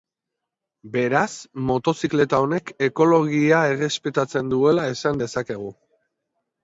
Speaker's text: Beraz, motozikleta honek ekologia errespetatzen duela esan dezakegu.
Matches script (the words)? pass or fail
pass